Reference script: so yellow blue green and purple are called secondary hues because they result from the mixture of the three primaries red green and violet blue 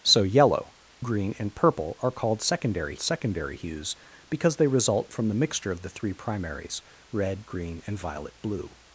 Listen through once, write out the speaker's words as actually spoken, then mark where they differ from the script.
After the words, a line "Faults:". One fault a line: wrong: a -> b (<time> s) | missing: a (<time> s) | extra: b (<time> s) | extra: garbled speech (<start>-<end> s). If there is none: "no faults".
so yellow green and purple are called secondary secondary hues because they result from the mixture of the three primaries red green and violet blue
Faults:
missing: blue (0.7 s)
extra: secondary (3.0 s)